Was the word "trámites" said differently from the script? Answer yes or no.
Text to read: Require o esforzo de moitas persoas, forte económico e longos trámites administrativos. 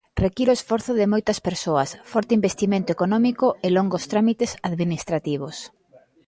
no